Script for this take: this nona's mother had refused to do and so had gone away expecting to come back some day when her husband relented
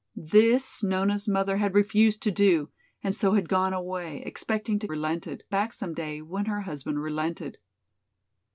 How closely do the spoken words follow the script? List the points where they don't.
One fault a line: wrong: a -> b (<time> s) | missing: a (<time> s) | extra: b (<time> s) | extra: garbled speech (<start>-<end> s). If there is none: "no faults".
wrong: come -> relented (4.9 s)